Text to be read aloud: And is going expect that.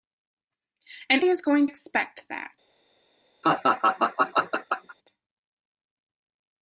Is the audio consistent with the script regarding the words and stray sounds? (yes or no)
no